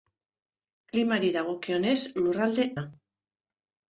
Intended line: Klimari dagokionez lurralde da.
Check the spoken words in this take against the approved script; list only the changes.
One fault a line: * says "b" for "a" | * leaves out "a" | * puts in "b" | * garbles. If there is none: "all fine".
all fine